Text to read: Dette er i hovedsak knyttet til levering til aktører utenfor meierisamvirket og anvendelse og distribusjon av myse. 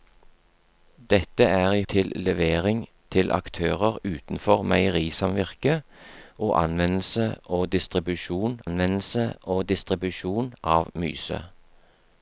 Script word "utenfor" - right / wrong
right